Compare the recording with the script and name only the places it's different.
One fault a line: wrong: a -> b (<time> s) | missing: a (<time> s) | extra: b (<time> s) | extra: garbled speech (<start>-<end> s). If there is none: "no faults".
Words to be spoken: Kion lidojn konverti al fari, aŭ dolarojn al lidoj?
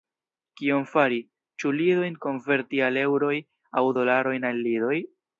extra: fari ĉu (0.9 s)
wrong: fari -> eŭroj (3.0 s)